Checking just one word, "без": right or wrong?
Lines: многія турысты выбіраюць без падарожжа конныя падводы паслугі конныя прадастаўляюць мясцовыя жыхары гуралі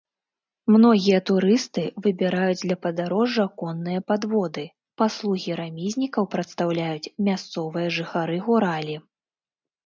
wrong